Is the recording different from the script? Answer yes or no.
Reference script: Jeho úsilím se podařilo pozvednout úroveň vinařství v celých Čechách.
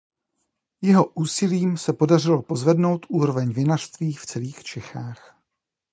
no